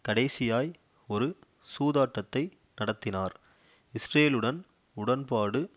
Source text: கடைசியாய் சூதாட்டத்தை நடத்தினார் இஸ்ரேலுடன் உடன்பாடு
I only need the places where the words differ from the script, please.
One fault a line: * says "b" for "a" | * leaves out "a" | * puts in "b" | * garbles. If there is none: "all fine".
* puts in "ஒரு"